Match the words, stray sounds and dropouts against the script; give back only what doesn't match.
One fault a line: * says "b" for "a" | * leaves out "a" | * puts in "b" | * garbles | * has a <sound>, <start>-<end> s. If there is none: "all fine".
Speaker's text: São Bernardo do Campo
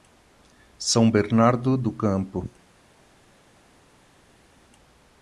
all fine